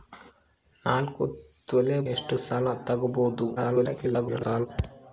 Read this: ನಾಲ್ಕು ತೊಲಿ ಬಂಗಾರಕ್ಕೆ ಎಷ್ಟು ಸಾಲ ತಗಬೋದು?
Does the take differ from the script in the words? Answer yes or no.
yes